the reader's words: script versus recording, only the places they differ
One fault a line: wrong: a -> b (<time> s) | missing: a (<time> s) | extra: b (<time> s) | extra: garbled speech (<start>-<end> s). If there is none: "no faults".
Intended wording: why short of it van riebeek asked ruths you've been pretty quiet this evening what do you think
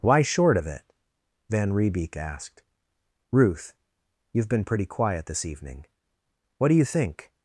wrong: ruths -> ruth (3.3 s)